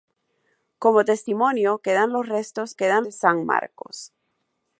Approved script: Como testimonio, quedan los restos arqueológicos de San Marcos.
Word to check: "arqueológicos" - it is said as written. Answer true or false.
false